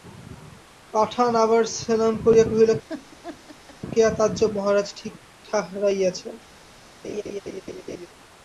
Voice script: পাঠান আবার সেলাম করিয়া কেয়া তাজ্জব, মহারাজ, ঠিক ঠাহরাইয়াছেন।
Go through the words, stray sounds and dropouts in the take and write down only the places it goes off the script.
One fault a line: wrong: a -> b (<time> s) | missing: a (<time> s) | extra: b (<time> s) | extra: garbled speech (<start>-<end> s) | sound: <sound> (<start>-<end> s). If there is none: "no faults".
extra: কহিল (2.4 s)
sound: laugh (2.9-3.8 s)
sound: laugh (7.0-8.1 s)